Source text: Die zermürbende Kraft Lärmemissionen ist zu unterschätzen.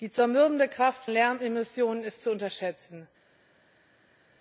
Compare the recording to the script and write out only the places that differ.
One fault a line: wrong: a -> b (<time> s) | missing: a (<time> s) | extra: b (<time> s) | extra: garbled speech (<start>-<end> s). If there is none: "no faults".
no faults